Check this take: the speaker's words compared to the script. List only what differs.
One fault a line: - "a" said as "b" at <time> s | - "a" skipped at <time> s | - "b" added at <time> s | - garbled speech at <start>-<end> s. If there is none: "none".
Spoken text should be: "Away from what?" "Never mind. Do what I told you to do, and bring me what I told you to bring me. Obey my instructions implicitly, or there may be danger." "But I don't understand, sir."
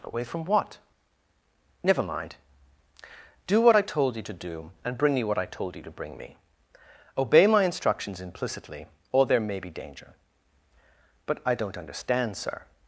none